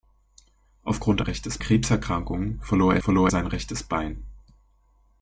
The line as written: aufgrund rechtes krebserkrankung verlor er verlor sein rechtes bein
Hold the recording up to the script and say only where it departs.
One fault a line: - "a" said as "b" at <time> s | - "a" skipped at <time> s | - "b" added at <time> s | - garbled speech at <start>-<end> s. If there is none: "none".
none